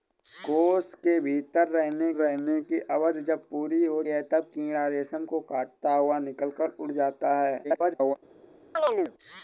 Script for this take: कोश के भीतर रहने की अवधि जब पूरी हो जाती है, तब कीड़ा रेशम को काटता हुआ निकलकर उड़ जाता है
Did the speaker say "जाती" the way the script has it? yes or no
no